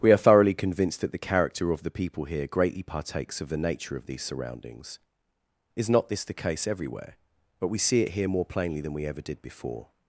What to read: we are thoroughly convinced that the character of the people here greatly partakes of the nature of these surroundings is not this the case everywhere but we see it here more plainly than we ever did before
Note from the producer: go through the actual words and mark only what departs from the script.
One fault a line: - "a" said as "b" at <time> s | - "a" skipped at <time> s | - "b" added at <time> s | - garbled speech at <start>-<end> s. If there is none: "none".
none